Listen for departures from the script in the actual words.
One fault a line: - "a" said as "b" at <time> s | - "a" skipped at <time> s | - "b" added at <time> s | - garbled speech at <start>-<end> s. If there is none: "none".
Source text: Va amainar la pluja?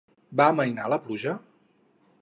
none